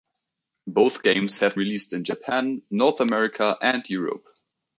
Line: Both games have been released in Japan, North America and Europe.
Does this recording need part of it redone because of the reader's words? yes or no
yes